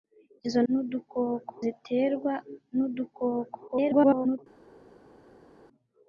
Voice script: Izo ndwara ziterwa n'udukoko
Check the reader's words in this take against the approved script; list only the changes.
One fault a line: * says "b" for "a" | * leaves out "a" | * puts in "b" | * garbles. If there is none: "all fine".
* says "n'udukoko" for "ndwara"
* garbles